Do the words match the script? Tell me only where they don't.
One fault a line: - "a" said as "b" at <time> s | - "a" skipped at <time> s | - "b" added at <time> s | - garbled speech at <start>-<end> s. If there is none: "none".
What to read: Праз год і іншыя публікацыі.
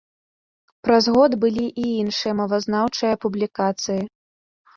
- "былі" added at 1.4 s
- "мовазнаўчыя" added at 2.4 s